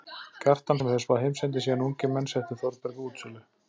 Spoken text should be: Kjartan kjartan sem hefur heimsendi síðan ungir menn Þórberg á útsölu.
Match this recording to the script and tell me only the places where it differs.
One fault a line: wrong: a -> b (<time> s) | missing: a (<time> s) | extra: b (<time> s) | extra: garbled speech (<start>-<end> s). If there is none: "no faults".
missing: kjartan (0.8 s)
extra: spáð (1.0 s)
extra: settu (2.3 s)